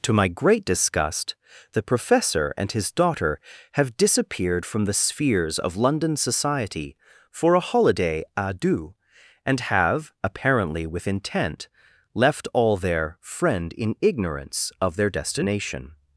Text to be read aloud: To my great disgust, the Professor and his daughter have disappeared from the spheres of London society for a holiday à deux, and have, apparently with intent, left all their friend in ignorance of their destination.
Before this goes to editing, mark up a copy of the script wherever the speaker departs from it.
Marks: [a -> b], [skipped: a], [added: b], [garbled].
To my great disgust, the Professor and his daughter have disappeared from the spheres of London society for a holiday à deux, and have, apparently with intent, left all their friend in ignorance of their destination.